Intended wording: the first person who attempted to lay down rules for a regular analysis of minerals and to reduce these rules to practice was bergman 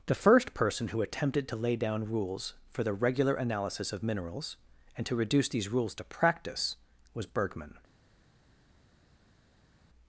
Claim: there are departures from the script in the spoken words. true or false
true